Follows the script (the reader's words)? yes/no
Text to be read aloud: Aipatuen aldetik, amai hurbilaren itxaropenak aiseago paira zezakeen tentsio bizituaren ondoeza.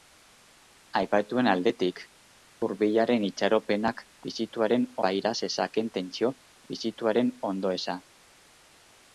no